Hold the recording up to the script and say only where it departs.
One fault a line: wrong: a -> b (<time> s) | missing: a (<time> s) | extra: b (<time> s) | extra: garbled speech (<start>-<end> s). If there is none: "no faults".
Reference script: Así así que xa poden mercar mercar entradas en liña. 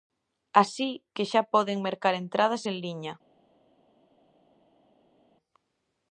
missing: así (0.9 s)
missing: mercar (2.1 s)